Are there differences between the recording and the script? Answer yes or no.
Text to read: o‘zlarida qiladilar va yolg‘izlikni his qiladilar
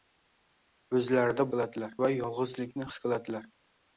no